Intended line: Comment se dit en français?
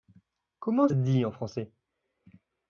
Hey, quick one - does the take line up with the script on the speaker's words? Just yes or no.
yes